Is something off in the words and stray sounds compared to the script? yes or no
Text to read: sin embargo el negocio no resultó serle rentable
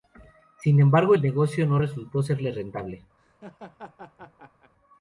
yes